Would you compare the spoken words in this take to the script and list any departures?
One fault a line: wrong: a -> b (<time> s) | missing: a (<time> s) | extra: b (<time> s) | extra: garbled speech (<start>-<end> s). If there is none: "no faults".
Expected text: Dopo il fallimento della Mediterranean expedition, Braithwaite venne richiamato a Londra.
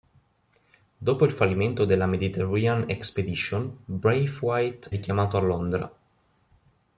missing: venne (4.9 s)